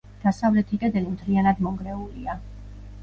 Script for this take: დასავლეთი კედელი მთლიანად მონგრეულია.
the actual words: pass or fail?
pass